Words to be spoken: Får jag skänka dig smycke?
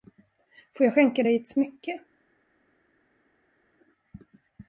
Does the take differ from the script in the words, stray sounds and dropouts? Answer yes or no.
yes